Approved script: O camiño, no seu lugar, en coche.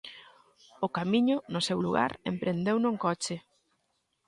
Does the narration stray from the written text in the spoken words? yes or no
yes